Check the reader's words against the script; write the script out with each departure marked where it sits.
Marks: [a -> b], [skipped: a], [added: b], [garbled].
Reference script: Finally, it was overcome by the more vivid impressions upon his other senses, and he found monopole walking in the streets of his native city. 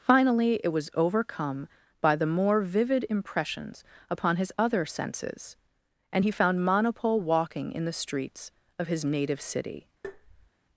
Finally, it was overcome by the more vivid impressions upon his other senses, and he found monopole walking in the streets of his native city.